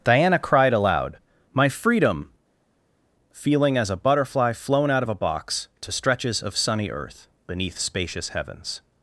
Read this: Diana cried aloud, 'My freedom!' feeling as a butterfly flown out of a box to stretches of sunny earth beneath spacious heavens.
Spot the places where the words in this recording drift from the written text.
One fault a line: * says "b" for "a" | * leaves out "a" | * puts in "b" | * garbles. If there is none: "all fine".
all fine